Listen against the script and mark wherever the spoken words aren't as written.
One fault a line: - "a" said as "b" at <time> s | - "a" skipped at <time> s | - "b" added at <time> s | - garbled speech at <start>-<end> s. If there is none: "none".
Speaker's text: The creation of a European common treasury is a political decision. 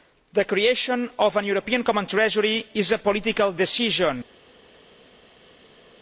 none